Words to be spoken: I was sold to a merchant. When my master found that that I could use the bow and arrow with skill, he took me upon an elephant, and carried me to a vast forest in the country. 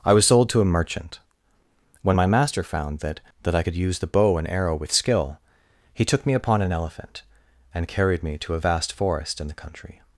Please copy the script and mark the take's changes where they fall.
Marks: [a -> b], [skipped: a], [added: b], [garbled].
I was sold to a merchant. When my master found that that I could use the bow and arrow with skill, he took me upon an elephant, and carried me to a vast forest in the country.